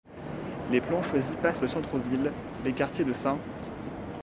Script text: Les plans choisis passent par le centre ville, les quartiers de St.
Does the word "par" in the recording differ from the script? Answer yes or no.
yes